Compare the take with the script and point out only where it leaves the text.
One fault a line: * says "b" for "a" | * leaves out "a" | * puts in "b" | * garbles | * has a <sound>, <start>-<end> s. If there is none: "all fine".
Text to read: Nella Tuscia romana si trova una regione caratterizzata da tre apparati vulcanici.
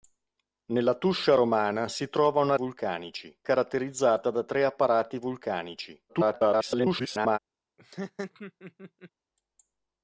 * says "vulcanici" for "regione"
* garbles
* has a laugh, 7.8-9.1 s